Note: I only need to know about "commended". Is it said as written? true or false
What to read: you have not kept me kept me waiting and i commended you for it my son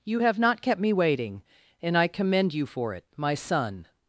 false